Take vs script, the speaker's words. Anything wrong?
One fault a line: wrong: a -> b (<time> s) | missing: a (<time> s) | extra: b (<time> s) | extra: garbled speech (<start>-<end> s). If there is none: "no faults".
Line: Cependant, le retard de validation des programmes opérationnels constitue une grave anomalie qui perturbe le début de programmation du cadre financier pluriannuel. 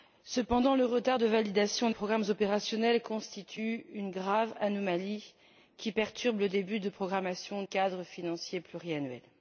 missing: des (1.9 s)
missing: du (7.6 s)